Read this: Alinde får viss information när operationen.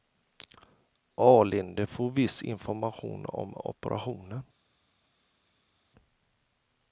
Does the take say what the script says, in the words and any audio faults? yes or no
no